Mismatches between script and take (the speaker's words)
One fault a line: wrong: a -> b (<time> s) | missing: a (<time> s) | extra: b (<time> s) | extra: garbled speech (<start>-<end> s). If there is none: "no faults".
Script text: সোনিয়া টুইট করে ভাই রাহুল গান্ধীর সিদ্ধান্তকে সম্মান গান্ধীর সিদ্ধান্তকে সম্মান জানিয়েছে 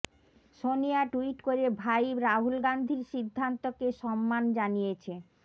missing: গান্ধীর সিদ্ধান্তকে সম্মান (4.4 s)